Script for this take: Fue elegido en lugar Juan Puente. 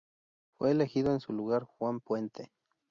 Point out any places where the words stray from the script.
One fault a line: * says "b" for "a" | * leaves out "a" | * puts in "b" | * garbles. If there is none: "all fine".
* puts in "su"